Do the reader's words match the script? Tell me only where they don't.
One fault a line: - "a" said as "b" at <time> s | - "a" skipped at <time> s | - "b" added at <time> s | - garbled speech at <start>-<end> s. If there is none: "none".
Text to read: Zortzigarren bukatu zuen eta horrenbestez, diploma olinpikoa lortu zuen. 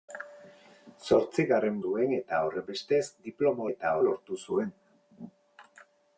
- "bukatu" skipped at 1.8 s
- "olinpikoa" said as "eta" at 3.7 s